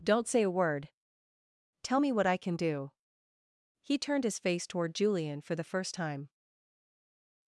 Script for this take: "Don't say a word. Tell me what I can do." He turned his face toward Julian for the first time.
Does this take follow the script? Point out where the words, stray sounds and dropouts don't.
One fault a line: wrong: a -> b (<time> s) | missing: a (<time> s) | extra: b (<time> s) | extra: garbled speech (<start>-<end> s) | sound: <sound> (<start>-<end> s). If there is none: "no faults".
no faults